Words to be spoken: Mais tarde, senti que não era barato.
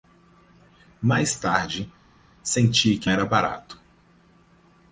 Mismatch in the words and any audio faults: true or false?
true